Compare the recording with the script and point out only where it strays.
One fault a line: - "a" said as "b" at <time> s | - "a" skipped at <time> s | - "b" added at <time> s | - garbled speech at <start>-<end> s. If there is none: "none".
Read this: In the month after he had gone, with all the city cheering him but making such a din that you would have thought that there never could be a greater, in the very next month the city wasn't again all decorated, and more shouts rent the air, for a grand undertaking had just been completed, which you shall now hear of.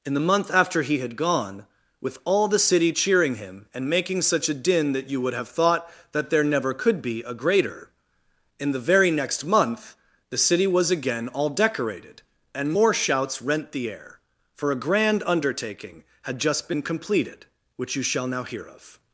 - "but" said as "and" at 3.7 s
- "wasn't" said as "was" at 10.7 s